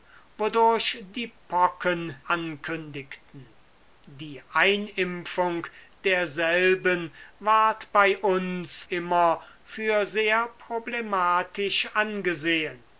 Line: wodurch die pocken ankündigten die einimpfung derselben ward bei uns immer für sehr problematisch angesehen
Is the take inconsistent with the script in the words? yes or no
no